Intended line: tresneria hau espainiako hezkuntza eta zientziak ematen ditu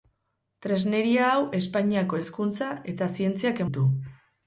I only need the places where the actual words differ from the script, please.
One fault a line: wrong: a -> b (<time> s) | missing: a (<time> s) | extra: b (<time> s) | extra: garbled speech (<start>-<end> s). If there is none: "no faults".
missing: ematen (3.6 s)